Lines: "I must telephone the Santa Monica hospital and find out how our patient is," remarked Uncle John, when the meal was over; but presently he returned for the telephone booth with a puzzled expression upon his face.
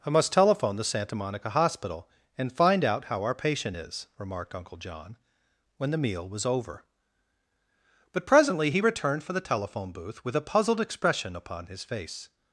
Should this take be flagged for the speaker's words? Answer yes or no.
no